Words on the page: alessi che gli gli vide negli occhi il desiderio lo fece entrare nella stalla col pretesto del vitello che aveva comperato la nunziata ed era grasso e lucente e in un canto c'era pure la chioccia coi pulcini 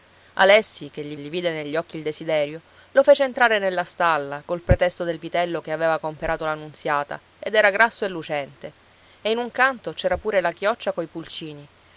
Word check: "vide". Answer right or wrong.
right